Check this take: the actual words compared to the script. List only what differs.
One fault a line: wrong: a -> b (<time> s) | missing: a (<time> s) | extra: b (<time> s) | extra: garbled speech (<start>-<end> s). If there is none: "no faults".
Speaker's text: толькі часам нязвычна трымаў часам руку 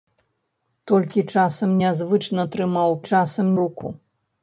no faults